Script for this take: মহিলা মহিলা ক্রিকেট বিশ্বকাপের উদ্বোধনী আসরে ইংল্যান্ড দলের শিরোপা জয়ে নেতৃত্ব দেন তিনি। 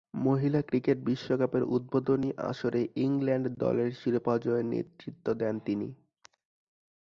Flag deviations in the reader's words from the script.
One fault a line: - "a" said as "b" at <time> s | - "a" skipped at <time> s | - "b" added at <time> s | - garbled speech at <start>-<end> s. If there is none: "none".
- "মহিলা" skipped at 0.6 s